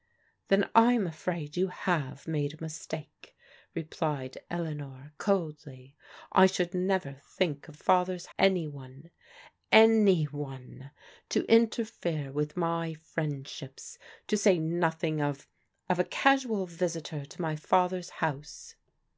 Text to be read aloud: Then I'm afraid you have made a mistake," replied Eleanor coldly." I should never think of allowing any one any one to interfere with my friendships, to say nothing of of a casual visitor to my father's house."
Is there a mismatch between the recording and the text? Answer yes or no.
yes